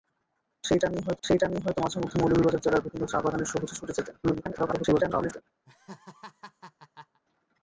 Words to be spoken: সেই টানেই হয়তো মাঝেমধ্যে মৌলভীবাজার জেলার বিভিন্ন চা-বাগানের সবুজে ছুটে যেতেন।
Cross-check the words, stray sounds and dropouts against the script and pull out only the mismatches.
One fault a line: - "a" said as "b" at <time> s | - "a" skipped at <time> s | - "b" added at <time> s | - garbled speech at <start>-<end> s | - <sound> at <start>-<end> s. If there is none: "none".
- "সেই টানেই হয়তো" added at 1.2 s
- garbled speech at 4.2-5.4 s
- laugh at 5.7-7.2 s